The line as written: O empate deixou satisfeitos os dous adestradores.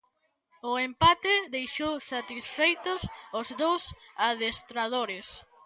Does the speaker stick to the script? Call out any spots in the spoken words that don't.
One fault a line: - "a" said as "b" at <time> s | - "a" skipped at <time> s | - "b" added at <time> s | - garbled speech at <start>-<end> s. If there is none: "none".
none